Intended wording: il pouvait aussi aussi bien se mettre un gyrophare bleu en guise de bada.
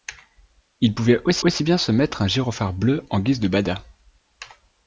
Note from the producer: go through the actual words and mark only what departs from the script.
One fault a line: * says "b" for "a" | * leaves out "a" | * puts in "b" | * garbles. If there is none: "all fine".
all fine